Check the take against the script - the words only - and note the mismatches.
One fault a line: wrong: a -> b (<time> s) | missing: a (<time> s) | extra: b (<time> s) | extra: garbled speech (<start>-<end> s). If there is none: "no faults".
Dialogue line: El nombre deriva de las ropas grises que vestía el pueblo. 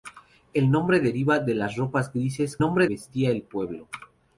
wrong: que -> nombre (2.6 s)